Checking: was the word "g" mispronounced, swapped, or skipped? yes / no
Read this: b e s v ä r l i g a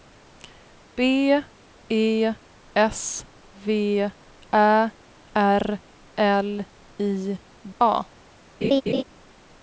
yes